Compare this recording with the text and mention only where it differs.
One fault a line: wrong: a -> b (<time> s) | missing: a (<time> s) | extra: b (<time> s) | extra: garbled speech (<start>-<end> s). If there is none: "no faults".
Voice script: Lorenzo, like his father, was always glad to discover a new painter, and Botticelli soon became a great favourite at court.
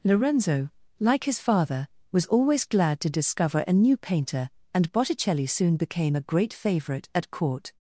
no faults